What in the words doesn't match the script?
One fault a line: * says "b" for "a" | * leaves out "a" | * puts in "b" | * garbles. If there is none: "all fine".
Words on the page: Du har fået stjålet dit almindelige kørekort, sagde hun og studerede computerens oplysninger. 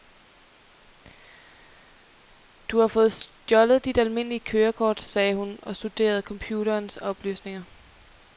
all fine